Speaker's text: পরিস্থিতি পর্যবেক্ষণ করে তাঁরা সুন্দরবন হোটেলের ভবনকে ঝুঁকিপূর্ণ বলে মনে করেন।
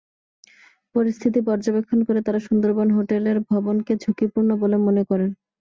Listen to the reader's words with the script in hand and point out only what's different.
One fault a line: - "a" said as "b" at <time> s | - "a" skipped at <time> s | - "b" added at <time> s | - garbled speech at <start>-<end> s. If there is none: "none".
none